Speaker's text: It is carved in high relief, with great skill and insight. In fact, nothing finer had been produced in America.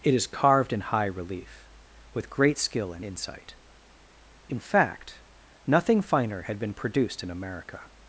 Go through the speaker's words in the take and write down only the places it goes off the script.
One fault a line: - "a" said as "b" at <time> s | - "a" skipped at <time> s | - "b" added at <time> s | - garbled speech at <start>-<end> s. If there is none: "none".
none